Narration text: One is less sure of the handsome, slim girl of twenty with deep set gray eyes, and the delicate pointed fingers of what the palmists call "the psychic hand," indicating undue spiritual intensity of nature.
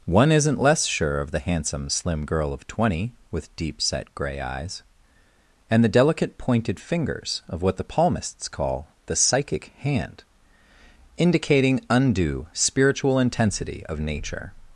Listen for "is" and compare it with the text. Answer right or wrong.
wrong